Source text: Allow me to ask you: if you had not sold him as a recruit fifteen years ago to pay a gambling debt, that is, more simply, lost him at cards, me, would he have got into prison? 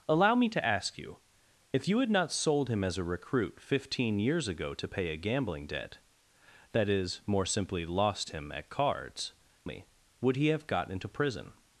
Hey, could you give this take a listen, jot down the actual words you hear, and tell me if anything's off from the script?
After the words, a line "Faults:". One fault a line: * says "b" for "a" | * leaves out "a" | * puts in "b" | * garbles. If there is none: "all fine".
Allow me to ask you: if you had not sold him as a recruit fifteen years ago to pay a gambling debt, that is, more simply, lost him at cards, me, would he have got into prison?
Faults:
all fine